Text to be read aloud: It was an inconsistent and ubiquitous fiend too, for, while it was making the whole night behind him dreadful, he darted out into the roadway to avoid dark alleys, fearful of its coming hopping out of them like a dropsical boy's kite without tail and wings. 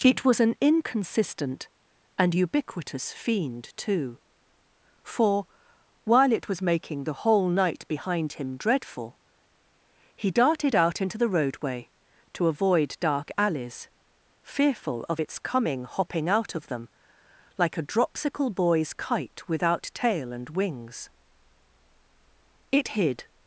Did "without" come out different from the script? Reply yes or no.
no